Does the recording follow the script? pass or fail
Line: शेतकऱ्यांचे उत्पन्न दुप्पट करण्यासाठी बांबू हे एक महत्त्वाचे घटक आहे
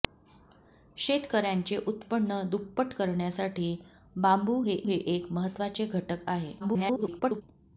fail